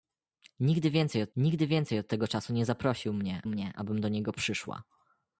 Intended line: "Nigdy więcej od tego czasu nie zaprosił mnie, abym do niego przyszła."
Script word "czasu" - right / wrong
right